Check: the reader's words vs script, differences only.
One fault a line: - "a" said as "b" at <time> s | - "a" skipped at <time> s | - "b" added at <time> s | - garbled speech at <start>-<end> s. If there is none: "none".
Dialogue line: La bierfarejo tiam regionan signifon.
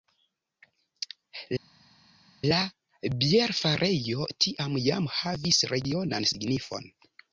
- "jam havis" added at 4.9 s